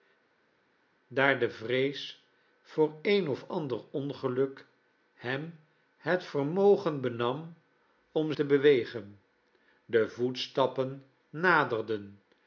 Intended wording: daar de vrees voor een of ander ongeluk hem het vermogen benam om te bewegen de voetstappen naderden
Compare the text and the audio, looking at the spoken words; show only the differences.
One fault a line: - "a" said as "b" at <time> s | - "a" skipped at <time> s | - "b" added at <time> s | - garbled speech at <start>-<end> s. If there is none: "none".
none